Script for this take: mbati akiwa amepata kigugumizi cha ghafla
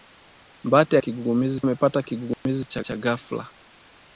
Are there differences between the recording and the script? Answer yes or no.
yes